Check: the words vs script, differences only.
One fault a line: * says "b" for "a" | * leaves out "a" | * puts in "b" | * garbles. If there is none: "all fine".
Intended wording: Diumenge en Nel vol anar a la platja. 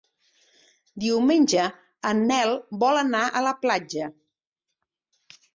all fine